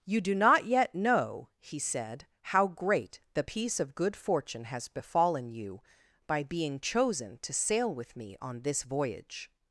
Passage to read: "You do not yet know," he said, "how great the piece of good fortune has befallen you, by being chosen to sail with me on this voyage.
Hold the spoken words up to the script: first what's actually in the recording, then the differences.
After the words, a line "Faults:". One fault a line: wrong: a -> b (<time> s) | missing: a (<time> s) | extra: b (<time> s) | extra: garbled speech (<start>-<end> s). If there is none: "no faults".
"You do not yet know," he said, "how great the piece of good fortune has befallen you, by being chosen to sail with me on this voyage.
Faults:
no faults